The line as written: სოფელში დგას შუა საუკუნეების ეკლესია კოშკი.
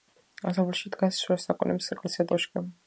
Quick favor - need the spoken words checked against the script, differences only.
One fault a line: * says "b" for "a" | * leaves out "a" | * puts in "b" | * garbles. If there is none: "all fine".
all fine